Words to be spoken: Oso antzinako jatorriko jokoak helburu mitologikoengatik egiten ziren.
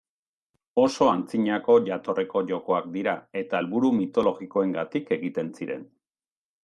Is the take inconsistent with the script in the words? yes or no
yes